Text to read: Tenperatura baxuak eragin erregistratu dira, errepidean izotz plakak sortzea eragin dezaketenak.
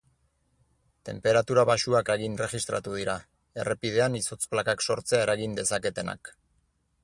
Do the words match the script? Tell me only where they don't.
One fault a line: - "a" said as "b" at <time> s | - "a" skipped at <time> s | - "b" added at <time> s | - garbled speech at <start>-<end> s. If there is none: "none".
none